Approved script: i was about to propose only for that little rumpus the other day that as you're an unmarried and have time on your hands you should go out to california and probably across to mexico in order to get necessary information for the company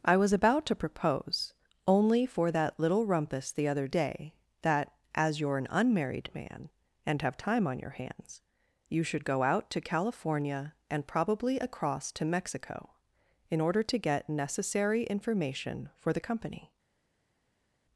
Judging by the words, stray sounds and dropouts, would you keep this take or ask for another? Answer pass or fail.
fail